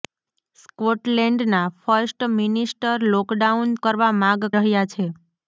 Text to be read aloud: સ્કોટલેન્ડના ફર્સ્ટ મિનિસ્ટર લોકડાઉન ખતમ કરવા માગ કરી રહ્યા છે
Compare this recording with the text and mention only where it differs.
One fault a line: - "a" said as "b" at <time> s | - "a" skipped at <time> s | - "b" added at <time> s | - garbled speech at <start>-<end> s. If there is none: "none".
- "ખતમ" skipped at 3.8 s
- "કરી" skipped at 4.5 s